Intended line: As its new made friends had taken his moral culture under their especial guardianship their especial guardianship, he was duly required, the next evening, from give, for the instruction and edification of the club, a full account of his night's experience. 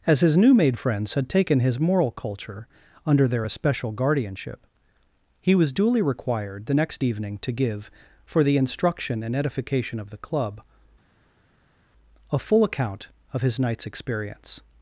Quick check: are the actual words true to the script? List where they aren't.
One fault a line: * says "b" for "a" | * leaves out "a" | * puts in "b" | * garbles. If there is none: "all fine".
* says "his" for "its"
* leaves out "their especial guardianship"
* says "to" for "from"